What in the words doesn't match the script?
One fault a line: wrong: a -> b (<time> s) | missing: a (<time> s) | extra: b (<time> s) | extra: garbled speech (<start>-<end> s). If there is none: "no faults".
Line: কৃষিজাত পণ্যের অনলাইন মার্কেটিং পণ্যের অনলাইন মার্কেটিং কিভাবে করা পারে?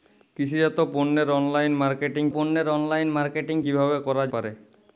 no faults